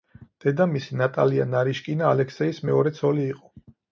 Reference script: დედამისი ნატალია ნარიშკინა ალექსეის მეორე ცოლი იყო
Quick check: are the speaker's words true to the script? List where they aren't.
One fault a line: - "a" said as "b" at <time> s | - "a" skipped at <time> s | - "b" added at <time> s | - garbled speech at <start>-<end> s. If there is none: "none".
none